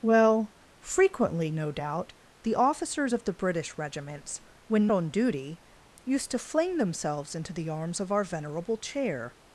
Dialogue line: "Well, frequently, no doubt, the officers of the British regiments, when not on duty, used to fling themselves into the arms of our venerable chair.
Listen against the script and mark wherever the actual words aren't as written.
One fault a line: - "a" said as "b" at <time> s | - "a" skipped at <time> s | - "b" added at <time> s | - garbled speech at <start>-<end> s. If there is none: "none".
- "not" skipped at 4.9 s